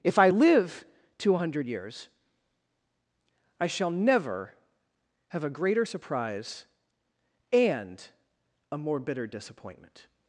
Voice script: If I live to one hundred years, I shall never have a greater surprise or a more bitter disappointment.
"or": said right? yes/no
no